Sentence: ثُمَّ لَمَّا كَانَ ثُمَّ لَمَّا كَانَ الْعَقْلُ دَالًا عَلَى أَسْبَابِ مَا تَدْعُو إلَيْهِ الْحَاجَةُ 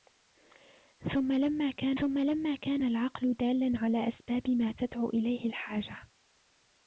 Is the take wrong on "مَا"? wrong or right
right